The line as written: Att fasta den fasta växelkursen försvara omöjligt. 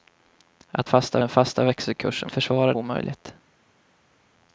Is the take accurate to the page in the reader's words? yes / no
yes